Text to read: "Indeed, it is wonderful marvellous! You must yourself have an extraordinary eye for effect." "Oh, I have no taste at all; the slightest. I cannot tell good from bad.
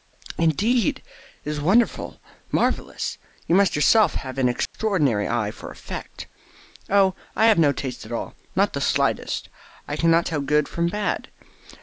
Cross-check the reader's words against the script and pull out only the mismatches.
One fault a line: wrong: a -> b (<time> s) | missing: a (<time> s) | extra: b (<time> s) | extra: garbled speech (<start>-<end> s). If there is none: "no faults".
extra: not (8.5 s)